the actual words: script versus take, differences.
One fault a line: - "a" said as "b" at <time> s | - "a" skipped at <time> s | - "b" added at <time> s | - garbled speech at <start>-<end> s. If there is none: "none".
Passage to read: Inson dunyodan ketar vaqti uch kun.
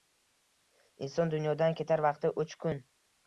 none